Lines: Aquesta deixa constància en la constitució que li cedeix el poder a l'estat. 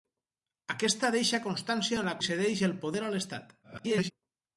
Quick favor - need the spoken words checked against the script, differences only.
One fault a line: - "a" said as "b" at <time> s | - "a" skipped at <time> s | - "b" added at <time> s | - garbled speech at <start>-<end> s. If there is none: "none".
- "constitució que" skipped at 2.2 s
- garbled speech at 3.6-4.1 s